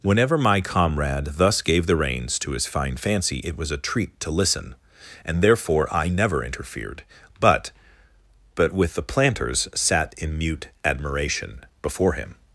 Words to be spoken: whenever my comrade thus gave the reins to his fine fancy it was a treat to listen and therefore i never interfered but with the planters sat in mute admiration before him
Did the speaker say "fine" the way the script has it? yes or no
yes